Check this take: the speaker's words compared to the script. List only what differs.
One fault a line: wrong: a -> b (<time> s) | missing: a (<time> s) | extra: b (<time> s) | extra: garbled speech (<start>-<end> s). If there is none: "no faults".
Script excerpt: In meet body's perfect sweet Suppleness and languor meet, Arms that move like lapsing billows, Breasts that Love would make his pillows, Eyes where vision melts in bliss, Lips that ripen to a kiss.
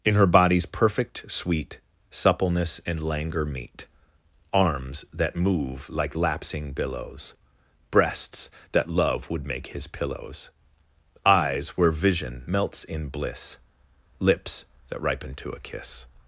wrong: meet -> her (0.1 s)